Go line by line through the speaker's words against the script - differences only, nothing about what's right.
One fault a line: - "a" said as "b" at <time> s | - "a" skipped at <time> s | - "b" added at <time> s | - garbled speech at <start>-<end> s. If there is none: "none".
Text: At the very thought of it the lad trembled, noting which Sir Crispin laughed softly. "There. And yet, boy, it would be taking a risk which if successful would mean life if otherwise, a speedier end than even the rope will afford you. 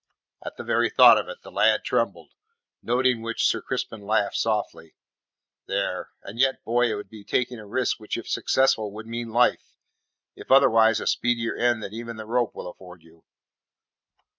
none